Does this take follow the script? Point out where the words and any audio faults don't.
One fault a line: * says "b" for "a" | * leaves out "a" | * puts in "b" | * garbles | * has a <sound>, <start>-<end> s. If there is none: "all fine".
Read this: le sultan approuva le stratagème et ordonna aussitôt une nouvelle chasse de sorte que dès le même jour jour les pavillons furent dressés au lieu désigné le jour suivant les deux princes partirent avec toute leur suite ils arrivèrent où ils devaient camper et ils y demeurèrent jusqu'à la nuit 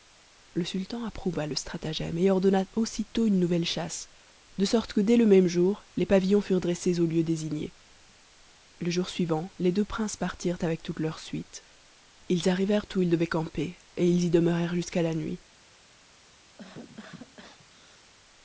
* leaves out "jour"
* has a cough, 16.6-18.1 s